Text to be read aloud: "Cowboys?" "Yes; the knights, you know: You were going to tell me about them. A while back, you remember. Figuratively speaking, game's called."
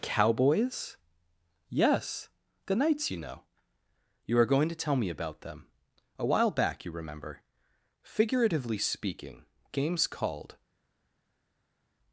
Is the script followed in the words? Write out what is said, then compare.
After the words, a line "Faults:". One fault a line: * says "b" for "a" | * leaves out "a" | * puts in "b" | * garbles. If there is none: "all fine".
"Cowboys?" "Yes; the knights, you know: You are going to tell me about them. A while back, you remember. Figuratively speaking, game's called."
Faults:
* says "are" for "were"